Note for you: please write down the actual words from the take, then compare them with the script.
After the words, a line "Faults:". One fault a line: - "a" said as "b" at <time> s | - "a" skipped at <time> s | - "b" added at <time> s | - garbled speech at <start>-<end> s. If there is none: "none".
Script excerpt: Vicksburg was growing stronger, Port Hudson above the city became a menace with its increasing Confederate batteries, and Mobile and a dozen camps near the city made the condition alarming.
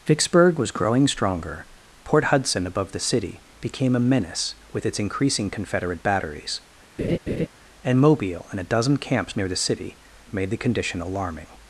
Vicksburg was growing stronger, Port Hudson above the city became a menace with its increasing Confederate batteries, and Mobile and a dozen camps near the city made the condition alarming.
Faults:
none